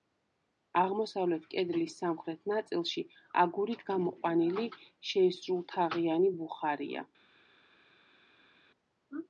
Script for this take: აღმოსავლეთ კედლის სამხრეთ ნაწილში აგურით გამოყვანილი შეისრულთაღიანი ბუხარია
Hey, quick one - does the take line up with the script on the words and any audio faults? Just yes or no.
yes